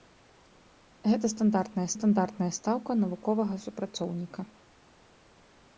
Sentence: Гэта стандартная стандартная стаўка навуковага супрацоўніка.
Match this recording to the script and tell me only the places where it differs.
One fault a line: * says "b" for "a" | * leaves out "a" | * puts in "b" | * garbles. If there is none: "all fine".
all fine